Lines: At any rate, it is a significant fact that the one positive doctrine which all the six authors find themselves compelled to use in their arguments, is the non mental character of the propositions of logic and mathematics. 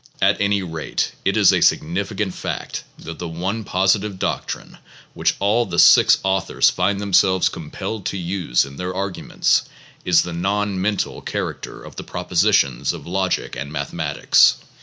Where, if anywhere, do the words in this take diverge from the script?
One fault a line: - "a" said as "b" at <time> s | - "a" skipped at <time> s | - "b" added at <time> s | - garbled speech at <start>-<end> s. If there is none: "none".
none